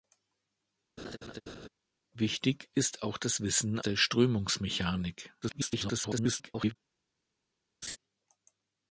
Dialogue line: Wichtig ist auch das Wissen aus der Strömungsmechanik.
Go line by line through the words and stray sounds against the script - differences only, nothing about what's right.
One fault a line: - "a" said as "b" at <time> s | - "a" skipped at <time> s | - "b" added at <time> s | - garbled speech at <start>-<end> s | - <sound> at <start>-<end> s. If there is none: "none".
- laugh at 1.0-1.7 s
- "aus" skipped at 3.8 s
- garbled speech at 5.4-6.8 s
- laugh at 7.8-8.0 s